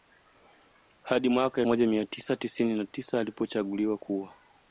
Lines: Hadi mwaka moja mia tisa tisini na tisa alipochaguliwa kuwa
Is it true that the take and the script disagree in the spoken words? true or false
false